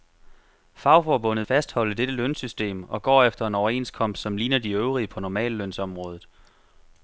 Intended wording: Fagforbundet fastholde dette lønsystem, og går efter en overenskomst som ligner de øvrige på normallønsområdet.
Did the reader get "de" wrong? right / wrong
right